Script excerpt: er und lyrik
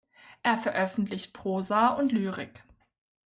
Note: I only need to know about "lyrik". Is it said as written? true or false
true